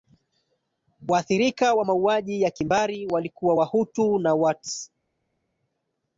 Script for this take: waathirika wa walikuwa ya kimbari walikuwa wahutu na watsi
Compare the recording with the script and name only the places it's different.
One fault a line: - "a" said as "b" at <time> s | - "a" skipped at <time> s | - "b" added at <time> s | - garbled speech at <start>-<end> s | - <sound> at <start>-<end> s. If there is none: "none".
- "walikuwa" said as "mauaji" at 1.8 s